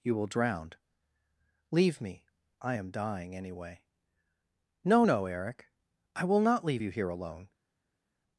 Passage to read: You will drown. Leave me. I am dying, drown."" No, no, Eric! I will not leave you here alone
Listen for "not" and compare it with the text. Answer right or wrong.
right